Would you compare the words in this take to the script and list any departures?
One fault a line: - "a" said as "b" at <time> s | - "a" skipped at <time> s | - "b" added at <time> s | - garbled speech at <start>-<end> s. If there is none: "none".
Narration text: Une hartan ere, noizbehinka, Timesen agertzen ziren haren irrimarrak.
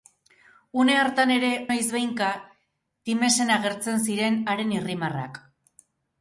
none